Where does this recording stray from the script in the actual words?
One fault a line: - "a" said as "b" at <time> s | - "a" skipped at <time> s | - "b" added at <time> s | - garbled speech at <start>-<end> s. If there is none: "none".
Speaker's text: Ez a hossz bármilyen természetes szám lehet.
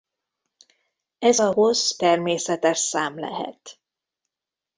- "bármilyen" skipped at 2.0 s